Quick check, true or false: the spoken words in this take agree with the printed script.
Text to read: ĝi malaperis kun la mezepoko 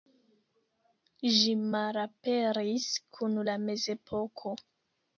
true